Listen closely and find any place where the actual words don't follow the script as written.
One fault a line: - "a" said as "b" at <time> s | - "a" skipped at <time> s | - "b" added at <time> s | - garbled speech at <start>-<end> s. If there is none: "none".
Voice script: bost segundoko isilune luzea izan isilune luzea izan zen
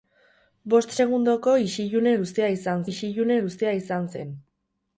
none